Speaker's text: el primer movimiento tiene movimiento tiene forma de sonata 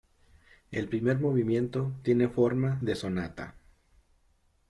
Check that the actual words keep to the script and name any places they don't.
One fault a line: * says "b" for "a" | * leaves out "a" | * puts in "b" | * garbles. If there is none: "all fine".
* leaves out "movimiento tiene"